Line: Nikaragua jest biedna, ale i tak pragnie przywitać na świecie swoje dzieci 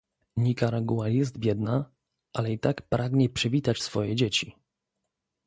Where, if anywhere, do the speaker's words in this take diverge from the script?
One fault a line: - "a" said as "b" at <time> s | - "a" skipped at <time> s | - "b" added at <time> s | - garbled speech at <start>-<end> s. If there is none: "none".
- "na świecie" skipped at 3.8 s